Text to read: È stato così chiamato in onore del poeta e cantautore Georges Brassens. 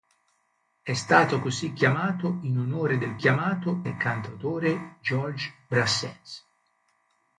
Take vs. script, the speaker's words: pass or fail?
fail